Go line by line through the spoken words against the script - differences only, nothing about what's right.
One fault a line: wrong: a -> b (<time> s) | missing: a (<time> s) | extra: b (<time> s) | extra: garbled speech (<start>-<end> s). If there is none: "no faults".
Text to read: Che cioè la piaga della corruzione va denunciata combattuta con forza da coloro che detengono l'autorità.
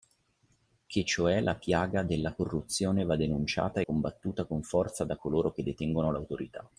no faults